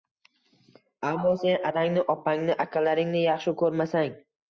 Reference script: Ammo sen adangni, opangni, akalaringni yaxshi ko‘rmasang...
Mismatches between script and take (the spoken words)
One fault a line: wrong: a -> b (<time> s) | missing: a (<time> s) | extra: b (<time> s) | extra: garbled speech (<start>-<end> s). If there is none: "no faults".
no faults